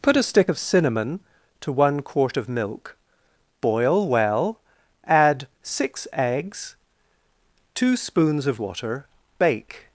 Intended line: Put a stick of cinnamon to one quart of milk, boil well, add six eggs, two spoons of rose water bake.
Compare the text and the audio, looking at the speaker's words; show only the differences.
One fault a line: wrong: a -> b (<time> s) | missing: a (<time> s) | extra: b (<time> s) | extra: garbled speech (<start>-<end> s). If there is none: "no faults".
missing: rose (8.6 s)